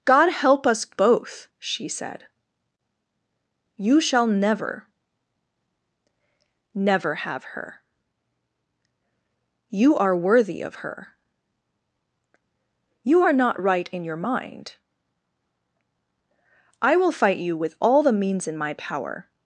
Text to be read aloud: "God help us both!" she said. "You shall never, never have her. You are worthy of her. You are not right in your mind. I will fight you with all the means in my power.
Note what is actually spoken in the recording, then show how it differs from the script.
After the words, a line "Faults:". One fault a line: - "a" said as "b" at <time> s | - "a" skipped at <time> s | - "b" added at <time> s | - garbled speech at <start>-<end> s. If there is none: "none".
"God help us both!" she said. "You shall never, never have her. You are worthy of her. You are not right in your mind. I will fight you with all the means in my power.
Faults:
none